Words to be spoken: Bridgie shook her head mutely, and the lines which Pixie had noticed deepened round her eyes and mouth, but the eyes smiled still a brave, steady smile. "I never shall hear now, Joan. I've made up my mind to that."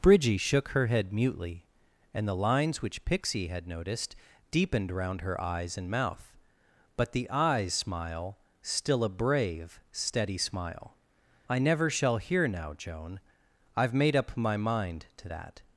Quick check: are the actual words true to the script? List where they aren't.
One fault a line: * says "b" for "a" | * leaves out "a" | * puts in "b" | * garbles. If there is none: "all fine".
* says "smile" for "smiled"